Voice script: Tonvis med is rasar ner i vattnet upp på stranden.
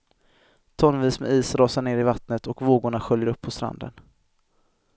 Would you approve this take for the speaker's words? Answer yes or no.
no